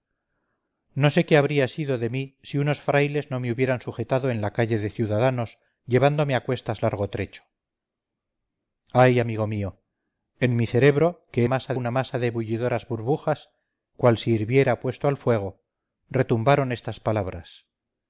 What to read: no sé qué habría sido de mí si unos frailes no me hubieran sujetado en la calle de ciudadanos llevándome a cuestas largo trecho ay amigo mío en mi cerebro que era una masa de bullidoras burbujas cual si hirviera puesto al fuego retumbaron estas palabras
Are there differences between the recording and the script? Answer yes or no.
yes